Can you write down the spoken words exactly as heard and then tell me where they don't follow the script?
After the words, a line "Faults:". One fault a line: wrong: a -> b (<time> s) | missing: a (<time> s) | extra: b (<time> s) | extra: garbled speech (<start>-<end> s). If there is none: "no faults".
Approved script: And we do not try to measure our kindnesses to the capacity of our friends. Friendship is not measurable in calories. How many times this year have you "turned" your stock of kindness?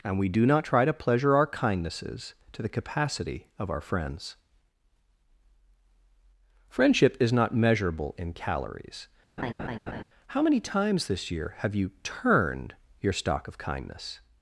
And we do not try to pleasure our kindnesses to the capacity of our friends. Friendship is not measurable in calories. How many times this year have you "turned" your stock of kindness?
Faults:
wrong: measure -> pleasure (0.9 s)